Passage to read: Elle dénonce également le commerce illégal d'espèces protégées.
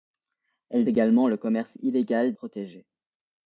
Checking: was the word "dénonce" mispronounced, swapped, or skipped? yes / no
yes